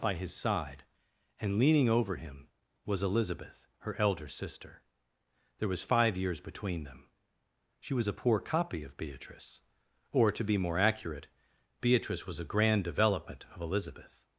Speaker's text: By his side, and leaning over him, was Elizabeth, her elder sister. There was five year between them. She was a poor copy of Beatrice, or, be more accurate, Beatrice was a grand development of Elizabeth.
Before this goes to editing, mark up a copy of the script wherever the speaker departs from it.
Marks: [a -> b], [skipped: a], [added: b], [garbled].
By his side, and leaning over him, was Elizabeth, her elder sister. There was five [year -> years] between them. She was a poor copy of Beatrice, or, [added: to] be more accurate, Beatrice was a grand development of Elizabeth.